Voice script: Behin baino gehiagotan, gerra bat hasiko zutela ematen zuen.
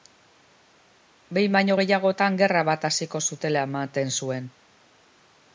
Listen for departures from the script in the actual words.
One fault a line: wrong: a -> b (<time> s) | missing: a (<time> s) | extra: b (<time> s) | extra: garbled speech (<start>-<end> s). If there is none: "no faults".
no faults